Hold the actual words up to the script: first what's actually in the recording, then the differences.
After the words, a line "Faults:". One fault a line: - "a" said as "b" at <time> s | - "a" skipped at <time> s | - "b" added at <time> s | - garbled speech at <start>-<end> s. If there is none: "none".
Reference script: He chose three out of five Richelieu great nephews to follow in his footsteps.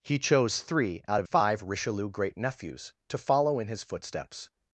He chose three out of five Richelieu great nephews to follow in his footsteps.
Faults:
none